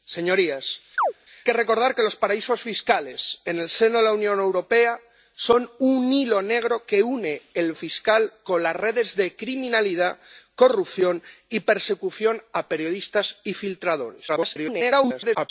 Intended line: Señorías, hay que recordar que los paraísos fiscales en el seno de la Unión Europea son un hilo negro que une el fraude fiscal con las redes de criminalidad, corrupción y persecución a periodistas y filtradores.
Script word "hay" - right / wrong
wrong